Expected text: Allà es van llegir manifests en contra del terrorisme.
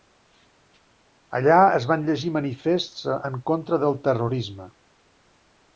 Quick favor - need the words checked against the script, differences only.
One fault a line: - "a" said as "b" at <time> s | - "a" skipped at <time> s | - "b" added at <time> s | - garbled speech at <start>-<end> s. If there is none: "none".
none